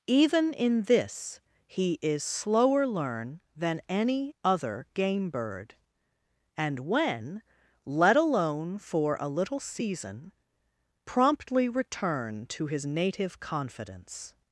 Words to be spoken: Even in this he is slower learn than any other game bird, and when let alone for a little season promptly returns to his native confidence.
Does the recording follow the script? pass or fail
fail